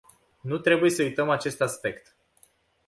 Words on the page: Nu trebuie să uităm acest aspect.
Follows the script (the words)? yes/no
yes